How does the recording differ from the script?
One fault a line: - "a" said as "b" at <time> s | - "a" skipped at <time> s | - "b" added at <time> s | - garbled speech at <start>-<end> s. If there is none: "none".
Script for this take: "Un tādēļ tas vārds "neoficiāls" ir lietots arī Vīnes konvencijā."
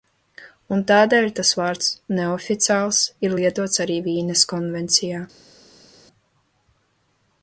none